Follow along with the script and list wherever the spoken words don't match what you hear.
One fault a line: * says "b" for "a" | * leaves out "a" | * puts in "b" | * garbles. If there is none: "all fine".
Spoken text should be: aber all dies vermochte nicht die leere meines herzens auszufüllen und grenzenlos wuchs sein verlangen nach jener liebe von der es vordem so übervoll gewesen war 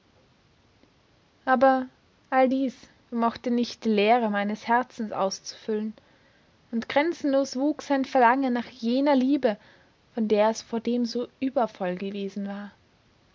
all fine